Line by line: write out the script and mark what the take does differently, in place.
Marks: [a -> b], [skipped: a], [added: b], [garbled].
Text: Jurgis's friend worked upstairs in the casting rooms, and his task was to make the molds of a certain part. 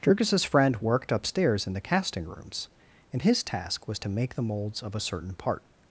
Jurgis's friend worked upstairs in the casting rooms, and his task was to make the molds of a certain part.